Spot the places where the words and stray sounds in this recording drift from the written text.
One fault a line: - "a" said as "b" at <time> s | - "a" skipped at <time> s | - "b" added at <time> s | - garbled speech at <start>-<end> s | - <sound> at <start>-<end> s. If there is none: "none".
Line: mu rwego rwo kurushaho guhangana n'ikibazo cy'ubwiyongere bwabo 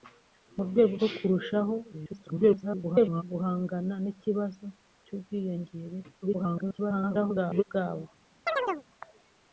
- garbled speech at 1.9-3.2 s
- garbled speech at 6.2-7.6 s
- chirp at 8.5-8.8 s